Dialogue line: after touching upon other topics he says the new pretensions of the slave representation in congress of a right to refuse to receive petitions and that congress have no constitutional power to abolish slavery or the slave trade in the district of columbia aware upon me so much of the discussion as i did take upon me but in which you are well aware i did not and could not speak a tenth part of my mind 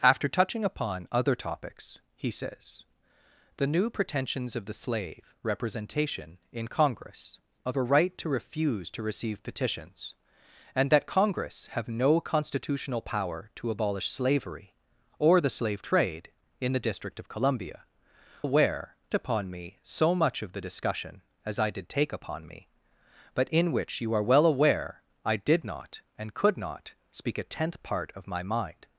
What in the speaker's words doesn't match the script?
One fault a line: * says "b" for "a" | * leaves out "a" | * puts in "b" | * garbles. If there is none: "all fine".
all fine